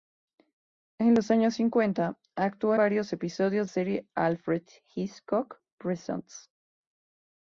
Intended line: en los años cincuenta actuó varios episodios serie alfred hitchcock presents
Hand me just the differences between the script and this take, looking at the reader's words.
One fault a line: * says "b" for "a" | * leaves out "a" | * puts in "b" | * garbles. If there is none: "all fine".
all fine